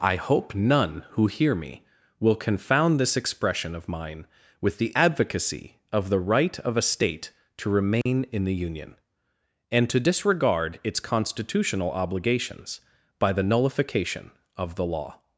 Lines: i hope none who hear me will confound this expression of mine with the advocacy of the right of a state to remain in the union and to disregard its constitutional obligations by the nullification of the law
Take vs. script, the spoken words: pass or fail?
pass